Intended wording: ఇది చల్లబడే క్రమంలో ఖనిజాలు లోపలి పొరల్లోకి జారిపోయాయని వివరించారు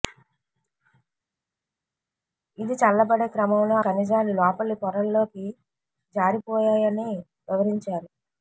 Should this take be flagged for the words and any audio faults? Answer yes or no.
no